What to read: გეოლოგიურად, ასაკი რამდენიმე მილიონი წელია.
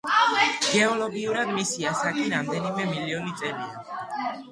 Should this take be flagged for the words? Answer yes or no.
yes